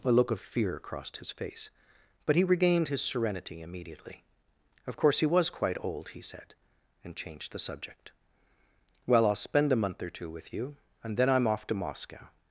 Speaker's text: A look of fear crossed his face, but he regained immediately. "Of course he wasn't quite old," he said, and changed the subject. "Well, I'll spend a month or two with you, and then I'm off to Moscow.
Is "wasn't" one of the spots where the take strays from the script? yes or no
yes